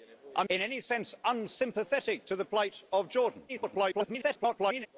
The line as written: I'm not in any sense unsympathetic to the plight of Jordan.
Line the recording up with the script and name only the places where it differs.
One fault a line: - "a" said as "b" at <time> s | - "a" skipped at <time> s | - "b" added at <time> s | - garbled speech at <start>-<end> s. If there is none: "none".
- "not" skipped at 0.5 s
- garbled speech at 3.5-4.9 s